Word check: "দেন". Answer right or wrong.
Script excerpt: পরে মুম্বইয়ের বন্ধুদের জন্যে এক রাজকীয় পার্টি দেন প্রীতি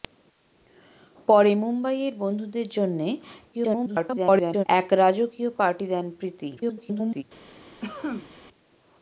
right